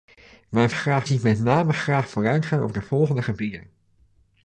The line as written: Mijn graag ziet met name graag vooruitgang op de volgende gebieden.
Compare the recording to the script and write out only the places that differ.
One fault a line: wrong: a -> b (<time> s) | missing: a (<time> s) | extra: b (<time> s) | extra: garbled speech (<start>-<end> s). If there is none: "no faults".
no faults